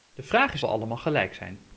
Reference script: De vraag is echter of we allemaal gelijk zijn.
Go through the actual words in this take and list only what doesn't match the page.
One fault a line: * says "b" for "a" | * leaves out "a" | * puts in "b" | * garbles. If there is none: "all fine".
* leaves out "echter of"